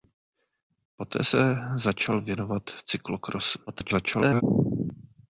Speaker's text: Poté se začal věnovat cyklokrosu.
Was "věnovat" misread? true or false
false